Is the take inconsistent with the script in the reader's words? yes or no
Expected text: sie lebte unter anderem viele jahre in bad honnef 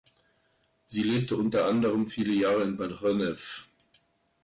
no